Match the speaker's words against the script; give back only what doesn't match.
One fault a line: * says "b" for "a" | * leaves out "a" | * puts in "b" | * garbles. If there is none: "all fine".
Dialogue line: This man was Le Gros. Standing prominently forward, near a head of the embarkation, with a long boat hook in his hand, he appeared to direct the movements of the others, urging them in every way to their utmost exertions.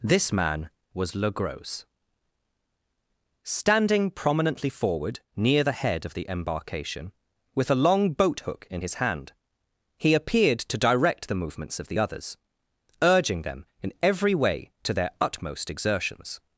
* says "the" for "a"